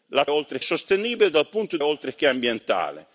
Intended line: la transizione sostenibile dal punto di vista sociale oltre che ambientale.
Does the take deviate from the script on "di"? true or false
true